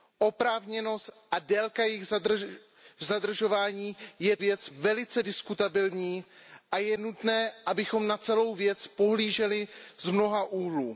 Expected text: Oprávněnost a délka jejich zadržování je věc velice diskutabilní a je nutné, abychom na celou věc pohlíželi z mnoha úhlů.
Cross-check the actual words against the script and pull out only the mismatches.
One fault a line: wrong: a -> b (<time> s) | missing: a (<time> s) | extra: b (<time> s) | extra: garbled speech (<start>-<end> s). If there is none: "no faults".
no faults